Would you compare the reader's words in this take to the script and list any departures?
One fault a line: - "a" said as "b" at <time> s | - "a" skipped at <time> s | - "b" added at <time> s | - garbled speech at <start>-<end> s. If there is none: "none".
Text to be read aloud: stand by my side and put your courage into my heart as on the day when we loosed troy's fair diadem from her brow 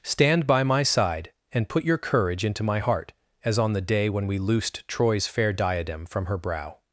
none